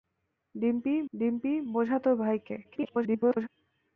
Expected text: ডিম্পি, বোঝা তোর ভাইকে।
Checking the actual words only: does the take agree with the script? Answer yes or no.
no